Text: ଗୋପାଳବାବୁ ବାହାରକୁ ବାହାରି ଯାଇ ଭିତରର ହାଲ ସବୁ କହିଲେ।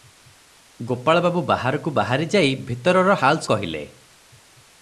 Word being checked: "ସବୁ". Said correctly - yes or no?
no